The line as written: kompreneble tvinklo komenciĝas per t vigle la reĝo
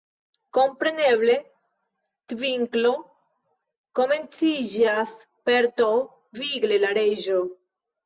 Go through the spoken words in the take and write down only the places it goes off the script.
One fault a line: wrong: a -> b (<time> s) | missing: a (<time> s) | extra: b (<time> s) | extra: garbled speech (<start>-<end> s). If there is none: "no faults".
no faults